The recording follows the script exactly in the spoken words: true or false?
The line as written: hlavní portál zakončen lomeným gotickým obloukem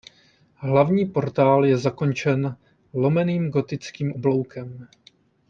false